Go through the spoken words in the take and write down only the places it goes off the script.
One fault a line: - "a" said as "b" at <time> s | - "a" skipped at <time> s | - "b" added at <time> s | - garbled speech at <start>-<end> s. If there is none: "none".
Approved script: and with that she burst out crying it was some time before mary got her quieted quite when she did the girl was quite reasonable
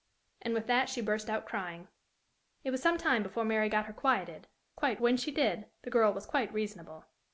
none